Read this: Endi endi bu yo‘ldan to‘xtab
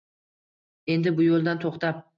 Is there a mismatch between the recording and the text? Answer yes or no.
yes